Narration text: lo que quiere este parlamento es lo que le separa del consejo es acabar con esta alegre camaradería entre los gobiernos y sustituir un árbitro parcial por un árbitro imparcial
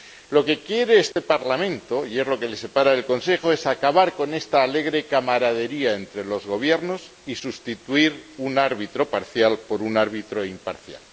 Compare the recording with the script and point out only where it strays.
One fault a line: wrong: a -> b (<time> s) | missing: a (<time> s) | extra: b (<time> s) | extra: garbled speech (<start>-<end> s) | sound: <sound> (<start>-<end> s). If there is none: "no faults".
sound: dropout (1.1-1.2 s)
extra: y (2.1 s)